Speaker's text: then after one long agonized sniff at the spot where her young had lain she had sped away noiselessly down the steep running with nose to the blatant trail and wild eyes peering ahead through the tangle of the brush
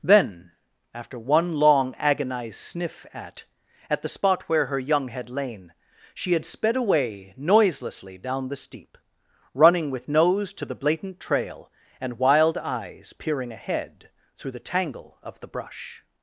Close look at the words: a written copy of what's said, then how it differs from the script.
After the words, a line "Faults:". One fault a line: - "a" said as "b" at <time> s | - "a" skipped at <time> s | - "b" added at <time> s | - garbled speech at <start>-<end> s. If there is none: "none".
then after one long agonized sniff at at the spot where her young had lain she had sped away noiselessly down the steep running with nose to the blatant trail and wild eyes peering ahead through the tangle of the brush
Faults:
- "at" added at 3.9 s